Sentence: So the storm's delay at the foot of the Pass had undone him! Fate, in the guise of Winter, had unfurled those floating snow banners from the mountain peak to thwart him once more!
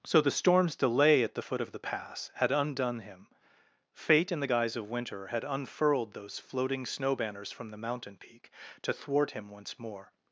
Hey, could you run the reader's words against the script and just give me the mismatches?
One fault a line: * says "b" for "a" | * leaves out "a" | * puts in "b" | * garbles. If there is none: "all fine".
all fine